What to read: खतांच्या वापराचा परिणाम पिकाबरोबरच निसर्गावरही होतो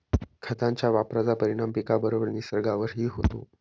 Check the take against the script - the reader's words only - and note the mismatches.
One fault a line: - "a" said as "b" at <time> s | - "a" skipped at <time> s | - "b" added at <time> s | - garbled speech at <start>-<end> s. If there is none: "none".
none